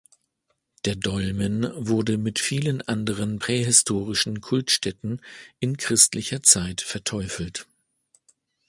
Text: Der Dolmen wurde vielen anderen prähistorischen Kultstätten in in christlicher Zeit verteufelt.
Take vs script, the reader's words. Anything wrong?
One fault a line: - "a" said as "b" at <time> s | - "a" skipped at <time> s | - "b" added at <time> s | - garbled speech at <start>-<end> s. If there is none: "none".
- "mit" added at 2.2 s
- "in" skipped at 5.8 s